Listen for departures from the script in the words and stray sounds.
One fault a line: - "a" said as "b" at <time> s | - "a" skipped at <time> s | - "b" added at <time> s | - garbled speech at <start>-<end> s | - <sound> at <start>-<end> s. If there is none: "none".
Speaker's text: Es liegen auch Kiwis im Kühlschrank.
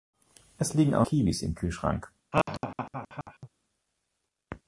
- laugh at 2.3-3.5 s